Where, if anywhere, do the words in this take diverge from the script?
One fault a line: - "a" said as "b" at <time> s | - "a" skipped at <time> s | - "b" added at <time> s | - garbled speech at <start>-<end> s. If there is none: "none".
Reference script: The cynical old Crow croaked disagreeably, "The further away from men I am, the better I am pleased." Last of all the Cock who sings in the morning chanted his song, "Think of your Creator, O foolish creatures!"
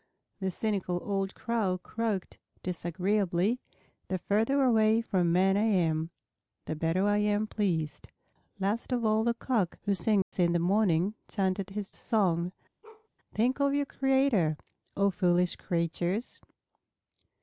none